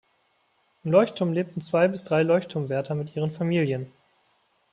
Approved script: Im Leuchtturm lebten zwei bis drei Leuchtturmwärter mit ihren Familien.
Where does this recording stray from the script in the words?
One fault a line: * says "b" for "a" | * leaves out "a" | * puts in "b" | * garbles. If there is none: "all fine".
all fine